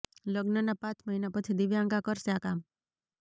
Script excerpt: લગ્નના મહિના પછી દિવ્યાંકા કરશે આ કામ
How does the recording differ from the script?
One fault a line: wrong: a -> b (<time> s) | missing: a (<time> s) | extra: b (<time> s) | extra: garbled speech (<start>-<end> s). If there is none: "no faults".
extra: પાંચ (0.8 s)